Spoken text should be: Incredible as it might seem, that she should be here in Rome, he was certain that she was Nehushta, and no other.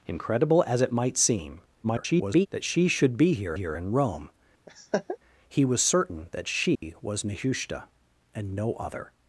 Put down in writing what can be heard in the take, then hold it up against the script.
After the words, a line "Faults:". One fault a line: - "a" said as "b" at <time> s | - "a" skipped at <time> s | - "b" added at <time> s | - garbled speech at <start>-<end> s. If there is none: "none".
Incredible as it might seem, [garbled] that she should be here here in Rome, he was certain that she was Nehushta, and no other.
Faults:
- garbled speech at 1.8-2.5 s
- "here" added at 3.5 s